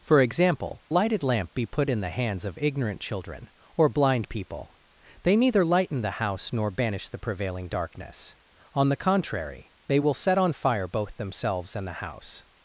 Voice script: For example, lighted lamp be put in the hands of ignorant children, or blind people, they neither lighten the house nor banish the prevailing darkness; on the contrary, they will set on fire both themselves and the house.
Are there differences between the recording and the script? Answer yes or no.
no